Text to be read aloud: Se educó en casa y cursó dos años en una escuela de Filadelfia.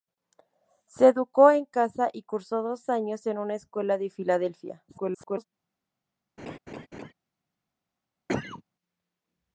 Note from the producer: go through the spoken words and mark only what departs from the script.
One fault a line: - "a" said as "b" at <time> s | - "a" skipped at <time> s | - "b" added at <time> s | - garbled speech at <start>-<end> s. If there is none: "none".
- garbled speech at 4.9-5.5 s